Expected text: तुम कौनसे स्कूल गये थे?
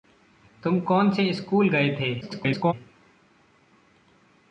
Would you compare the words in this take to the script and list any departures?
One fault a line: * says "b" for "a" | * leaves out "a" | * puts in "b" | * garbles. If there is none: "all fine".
* garbles